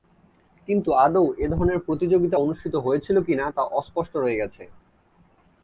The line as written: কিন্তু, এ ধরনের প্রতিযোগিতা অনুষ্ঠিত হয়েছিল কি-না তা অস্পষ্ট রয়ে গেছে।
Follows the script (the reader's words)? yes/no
no